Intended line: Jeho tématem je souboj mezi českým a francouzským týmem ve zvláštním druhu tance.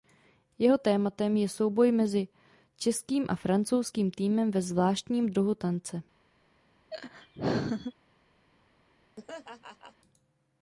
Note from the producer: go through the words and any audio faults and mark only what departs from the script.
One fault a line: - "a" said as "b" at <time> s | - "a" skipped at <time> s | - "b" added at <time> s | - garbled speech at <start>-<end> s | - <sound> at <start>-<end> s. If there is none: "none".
- laugh at 6.9-7.9 s
- laugh at 9.2-10.0 s